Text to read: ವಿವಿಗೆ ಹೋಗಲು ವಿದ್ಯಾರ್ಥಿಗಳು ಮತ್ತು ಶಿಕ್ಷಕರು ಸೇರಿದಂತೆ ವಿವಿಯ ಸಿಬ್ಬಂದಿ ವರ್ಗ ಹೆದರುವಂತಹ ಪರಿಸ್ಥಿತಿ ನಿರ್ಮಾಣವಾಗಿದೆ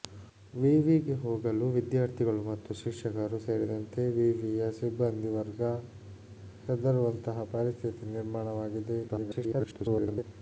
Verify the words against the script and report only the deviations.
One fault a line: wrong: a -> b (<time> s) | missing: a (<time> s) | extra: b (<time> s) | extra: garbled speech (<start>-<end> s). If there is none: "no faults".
extra: garbled speech (9.1-10.2 s)